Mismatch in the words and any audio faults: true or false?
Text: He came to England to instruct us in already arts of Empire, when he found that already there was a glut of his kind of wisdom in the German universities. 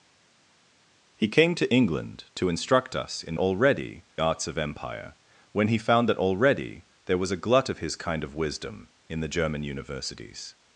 false